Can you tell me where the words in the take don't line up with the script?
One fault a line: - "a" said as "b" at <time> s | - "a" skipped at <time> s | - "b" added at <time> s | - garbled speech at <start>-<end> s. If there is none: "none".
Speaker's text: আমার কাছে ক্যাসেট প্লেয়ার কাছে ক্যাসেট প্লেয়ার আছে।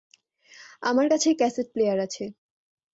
- "কাছে ক্যাসেট প্লেয়ার" skipped at 2.0 s